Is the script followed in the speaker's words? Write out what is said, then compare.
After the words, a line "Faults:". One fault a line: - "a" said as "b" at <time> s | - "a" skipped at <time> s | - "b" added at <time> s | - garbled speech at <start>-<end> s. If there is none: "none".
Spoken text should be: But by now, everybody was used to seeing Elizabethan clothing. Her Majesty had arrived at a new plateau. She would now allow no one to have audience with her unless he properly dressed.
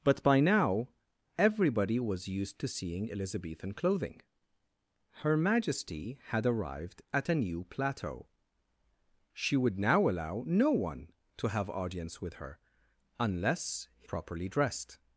But by now, everybody was used to seeing Elizabethan clothing. Her Majesty had arrived at a new plateau. She would now allow no one to have audience with her unless he properly dressed.
Faults:
none